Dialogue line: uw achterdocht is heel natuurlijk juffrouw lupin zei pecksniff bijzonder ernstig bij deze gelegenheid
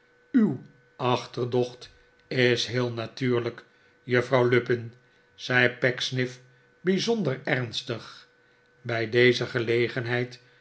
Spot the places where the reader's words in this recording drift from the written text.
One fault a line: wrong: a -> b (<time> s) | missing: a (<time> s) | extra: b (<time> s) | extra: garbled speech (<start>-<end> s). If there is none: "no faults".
no faults